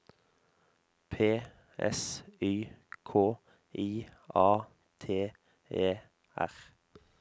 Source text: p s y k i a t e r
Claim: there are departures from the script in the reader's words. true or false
false